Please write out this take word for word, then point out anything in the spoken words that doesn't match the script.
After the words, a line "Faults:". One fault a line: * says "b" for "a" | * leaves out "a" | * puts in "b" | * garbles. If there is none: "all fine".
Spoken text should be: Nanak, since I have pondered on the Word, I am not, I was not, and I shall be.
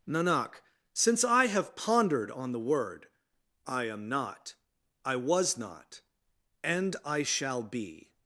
Nanak, since I have pondered on the Word, I am not, I was not, and I shall be.
Faults:
all fine